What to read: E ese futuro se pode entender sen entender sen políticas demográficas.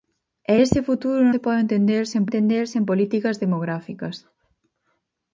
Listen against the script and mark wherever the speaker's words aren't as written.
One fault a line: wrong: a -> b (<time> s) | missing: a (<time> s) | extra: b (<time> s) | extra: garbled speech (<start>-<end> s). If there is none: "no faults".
no faults